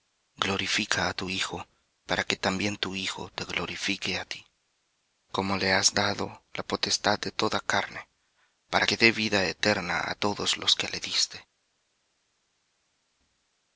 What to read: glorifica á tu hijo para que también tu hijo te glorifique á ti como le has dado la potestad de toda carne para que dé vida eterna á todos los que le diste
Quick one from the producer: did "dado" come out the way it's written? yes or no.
yes